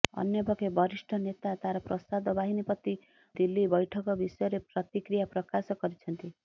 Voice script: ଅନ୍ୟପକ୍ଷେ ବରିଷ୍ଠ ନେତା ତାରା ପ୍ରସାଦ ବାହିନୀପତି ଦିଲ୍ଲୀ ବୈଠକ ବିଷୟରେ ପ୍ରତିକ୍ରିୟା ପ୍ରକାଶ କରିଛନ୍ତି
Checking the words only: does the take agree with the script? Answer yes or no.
yes